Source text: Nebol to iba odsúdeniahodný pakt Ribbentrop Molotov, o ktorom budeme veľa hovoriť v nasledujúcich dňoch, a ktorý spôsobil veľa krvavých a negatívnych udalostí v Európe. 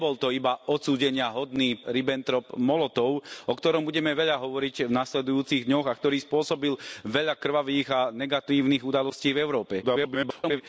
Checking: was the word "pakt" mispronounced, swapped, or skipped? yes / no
yes